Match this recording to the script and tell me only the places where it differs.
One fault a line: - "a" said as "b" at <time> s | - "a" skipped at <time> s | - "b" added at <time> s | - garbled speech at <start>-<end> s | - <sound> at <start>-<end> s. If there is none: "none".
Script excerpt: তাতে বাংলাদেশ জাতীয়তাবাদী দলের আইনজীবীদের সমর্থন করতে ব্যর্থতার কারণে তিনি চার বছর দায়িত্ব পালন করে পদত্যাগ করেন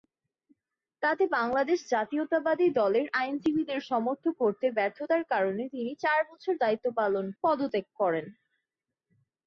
- "করে" skipped at 7.2 s